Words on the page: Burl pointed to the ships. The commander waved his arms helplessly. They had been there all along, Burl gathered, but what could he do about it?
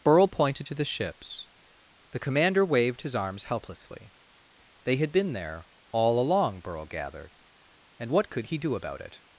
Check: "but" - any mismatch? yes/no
yes